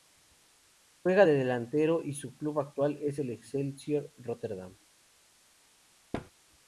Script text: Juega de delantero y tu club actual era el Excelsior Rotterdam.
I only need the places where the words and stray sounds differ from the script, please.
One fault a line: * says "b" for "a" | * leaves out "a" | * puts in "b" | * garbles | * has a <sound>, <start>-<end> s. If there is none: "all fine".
* says "su" for "tu"
* says "es" for "era"
* has a thud, 6.1-6.3 s